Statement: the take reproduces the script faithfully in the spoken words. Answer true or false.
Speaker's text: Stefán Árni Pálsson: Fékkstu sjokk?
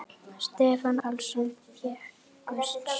false